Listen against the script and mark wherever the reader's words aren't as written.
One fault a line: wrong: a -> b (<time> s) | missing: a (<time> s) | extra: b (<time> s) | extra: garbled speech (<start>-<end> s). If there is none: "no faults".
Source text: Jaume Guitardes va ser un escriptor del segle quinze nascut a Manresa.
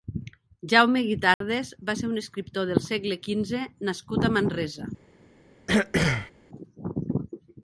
no faults